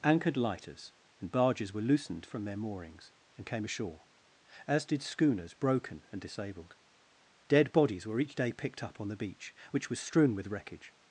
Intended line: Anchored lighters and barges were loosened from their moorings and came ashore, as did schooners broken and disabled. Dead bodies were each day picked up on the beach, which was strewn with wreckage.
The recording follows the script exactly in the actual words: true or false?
true